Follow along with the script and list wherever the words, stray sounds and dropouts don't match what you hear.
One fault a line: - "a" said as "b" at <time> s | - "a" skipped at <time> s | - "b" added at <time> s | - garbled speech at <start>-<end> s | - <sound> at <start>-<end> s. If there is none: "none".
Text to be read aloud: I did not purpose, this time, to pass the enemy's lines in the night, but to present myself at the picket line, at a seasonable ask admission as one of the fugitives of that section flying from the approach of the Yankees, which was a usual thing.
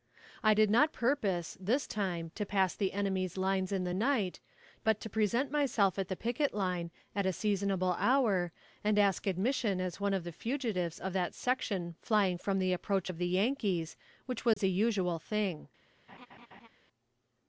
- "hour and" added at 8.0 s
- dropout at 14.5-14.6 s
- laugh at 16.1-16.7 s